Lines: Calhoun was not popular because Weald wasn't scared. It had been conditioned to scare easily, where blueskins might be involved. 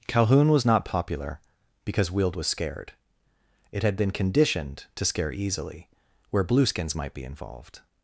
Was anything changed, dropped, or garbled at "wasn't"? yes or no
yes